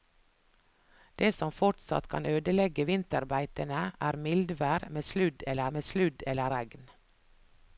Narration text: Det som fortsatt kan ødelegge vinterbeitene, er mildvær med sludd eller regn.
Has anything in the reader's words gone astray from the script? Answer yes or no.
yes